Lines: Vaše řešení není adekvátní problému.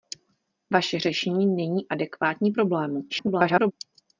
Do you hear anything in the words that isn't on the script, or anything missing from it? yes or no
yes